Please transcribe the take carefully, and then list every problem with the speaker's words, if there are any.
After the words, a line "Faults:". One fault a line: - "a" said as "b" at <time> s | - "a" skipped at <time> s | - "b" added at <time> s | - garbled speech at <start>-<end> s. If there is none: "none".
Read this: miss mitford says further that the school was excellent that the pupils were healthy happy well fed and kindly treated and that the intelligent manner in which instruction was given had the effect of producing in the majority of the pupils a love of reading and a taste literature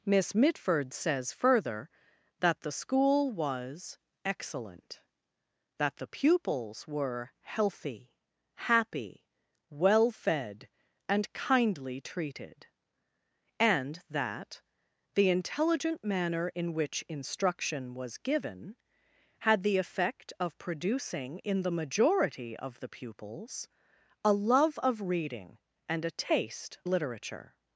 miss mitford says further that the school was excellent that the pupils were healthy happy well fed and kindly treated and that the intelligent manner in which instruction was given had the effect of producing in the majority of the pupils a love of reading and a taste literature
Faults:
none